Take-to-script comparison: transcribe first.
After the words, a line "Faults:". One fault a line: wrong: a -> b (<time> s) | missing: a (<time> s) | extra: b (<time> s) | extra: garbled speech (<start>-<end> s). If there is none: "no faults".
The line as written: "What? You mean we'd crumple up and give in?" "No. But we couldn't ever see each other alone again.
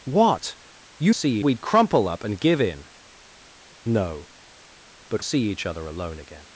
"What? You see we'd crumple up and give in?" "No. But see each other alone again.
Faults:
wrong: mean -> see (1.1 s)
missing: we couldn't ever (5.2 s)